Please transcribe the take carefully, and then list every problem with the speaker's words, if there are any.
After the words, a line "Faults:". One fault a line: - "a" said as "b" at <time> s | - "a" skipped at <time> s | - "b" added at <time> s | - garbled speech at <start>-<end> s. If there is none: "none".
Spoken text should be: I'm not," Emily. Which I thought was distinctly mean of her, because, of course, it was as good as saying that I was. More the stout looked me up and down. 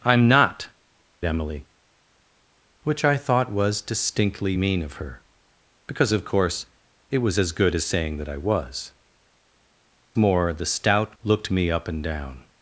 I'm not," Emily. Which I thought was distinctly mean of her, because, of course, it was as good as saying that I was. More the stout looked me up and down.
Faults:
none